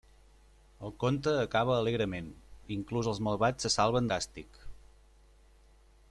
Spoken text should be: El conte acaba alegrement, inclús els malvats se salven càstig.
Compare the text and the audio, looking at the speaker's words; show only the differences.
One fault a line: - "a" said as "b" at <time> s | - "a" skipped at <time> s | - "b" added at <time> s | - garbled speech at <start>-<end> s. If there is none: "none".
none